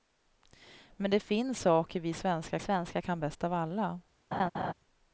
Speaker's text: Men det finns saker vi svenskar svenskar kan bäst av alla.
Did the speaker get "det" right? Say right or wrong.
right